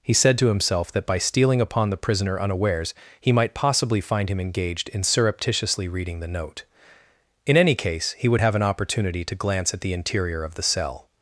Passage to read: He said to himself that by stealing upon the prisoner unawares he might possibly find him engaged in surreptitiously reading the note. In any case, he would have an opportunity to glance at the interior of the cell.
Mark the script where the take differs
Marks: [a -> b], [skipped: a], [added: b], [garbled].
He said to himself that by stealing upon the prisoner unawares he might possibly find him engaged in surreptitiously reading the note. In any case, he would have an opportunity to glance at the interior of the cell.